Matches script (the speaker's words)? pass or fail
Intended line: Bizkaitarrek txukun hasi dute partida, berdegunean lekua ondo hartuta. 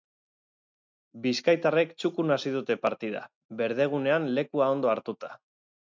pass